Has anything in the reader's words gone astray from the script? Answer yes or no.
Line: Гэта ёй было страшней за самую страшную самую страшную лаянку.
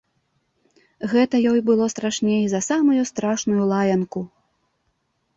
yes